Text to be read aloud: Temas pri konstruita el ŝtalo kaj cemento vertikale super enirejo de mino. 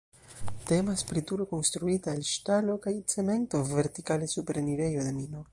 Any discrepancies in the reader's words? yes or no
yes